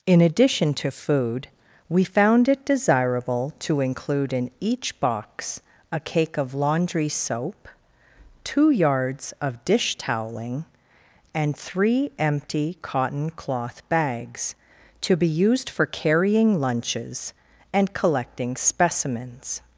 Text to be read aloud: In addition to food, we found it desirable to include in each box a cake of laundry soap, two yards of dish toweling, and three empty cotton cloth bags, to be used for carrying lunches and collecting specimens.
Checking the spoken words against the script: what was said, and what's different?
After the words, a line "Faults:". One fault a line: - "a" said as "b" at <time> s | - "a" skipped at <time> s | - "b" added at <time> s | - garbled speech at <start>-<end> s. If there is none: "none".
In addition to food, we found it desirable to include in each box a cake of laundry soap, two yards of dish toweling, and three empty cotton cloth bags, to be used for carrying lunches and collecting specimens.
Faults:
none